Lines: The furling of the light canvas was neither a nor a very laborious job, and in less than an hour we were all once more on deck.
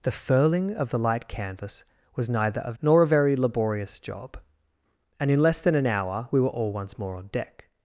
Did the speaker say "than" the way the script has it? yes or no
yes